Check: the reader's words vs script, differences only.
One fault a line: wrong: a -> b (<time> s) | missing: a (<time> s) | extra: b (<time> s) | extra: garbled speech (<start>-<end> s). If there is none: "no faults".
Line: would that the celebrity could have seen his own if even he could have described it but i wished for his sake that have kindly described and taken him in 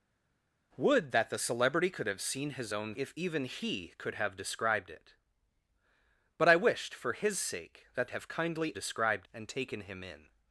no faults